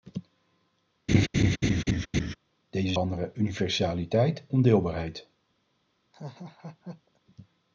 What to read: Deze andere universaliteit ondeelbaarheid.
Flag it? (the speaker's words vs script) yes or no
no